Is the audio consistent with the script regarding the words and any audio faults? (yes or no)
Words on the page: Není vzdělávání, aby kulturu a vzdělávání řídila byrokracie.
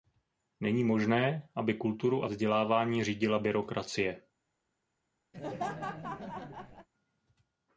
no